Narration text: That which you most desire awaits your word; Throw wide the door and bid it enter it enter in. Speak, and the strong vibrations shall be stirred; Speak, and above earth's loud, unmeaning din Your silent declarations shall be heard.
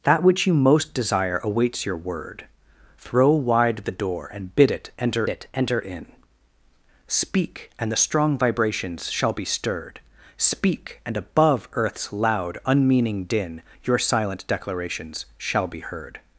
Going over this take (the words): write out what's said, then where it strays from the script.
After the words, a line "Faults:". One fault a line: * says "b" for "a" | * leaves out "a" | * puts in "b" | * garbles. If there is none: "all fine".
That which you most desire awaits your word; Throw wide the door and bid it enter it enter in. Speak, and the strong vibrations shall be stirred; Speak, and above earth's loud, unmeaning din Your silent declarations shall be heard.
Faults:
all fine